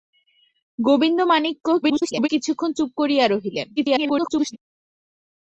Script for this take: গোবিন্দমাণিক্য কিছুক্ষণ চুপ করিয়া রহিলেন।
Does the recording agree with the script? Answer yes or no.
no